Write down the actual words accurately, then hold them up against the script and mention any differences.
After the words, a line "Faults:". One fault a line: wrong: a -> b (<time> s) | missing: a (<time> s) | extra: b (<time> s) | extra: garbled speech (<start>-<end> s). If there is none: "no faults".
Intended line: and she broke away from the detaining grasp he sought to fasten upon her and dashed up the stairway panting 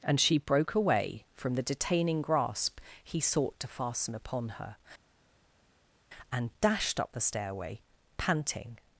and she broke away from the detaining grasp he sought to fasten upon her and dashed up the stairway panting
Faults:
no faults